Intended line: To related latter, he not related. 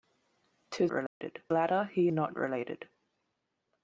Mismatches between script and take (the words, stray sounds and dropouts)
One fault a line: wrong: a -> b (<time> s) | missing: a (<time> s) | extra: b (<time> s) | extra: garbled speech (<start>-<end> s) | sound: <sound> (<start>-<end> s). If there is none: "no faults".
sound: dropout (1.1-1.2 s)